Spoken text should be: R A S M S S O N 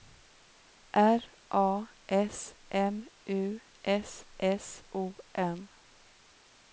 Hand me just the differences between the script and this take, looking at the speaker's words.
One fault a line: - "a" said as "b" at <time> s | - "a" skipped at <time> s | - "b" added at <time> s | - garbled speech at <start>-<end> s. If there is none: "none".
- "U" added at 3.3 s